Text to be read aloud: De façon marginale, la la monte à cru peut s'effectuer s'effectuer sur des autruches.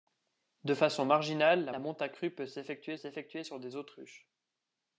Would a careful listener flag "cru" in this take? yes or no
no